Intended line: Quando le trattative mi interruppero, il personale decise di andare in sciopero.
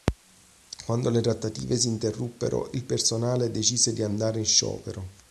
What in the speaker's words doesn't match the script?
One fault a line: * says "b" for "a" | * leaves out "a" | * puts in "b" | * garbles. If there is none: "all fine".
* says "si" for "mi"